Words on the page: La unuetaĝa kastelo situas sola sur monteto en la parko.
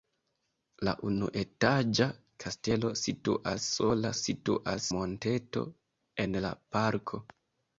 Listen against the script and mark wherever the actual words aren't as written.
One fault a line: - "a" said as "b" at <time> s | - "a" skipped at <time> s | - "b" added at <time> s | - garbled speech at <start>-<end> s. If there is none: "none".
- "sur" said as "situas" at 4.2 s